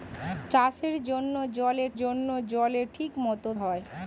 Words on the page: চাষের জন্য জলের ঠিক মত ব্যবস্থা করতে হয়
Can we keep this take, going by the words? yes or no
no